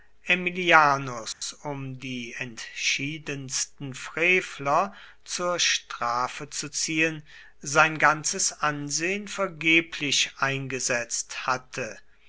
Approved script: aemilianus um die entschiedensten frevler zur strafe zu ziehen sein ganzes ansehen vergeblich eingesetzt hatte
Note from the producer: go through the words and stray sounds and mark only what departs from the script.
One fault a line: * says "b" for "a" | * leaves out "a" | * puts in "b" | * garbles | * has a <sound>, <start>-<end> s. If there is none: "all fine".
* has a dropout, 1.3-1.4 s